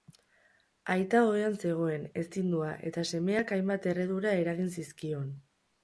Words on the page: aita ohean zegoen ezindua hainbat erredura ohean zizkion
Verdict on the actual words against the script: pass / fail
fail